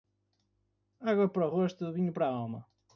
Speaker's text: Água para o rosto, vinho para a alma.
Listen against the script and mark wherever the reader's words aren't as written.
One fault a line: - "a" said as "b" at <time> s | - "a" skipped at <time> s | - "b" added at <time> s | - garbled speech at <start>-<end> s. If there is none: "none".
none